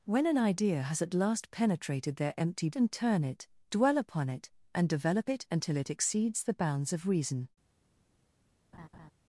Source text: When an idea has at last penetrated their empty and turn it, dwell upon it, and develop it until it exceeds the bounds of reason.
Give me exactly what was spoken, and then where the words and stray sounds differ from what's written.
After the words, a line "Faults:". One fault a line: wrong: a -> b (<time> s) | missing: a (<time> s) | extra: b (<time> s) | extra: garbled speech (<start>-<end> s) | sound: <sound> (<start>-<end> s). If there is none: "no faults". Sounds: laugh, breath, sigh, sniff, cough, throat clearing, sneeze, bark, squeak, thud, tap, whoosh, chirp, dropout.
When an idea has at last penetrated their empty and turn it, dwell upon it, and develop it until it exceeds the bounds of reason.
Faults:
sound: laugh (8.7-9.1 s)